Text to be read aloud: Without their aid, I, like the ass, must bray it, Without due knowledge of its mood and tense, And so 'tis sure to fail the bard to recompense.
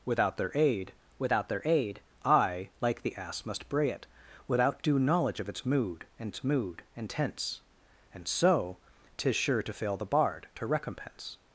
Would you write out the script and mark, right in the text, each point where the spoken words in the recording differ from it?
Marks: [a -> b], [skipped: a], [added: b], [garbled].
Without their aid, [added: without their aid] I, like the ass, must bray it, Without due knowledge of its mood and [added: its mood and] tense, And so 'tis sure to fail the bard to recompense.